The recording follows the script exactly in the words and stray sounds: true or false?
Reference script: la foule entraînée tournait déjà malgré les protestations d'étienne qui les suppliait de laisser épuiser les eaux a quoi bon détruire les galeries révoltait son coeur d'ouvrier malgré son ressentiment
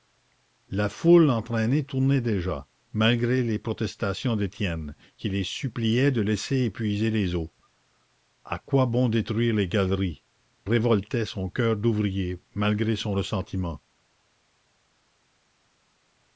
true